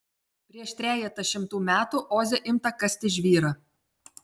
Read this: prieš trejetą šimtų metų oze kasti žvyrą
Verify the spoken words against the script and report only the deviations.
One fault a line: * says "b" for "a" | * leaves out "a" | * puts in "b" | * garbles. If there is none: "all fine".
* puts in "imta"